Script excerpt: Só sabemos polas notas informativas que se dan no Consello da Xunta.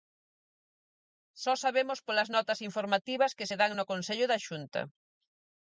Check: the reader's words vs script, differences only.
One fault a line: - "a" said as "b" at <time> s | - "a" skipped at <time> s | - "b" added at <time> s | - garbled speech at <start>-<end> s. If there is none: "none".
none